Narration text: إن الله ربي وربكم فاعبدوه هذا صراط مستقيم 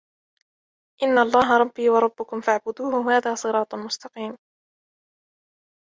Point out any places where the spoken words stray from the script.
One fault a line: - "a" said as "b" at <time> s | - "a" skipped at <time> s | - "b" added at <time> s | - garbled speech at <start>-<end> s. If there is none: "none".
none